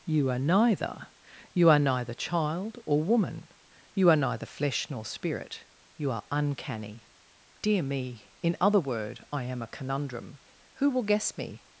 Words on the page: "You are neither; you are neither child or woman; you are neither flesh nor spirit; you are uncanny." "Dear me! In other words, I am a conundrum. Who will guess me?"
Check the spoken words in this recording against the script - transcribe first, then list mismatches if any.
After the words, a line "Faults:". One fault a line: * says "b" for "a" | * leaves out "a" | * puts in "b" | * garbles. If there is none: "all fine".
"You are neither; you are neither child or woman; you are neither flesh nor spirit; you are uncanny." "Dear me! In other word, I am a conundrum. Who will guess me?"
Faults:
* says "word" for "words"